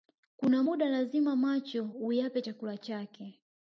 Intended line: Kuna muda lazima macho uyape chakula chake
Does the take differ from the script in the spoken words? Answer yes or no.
no